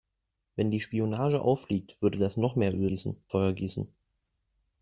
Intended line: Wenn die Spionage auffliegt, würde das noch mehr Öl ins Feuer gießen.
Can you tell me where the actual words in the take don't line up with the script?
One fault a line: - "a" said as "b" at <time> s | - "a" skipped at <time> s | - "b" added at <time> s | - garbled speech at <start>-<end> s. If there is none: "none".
- "ins" said as "gießen" at 2.8 s